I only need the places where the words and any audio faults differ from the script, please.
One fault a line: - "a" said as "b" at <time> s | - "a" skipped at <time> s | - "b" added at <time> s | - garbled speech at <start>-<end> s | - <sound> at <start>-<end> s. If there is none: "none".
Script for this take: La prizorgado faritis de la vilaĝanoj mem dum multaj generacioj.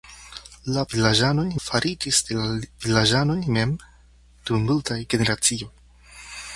- "prizorgado" said as "vilaĝanoj" at 0.9 s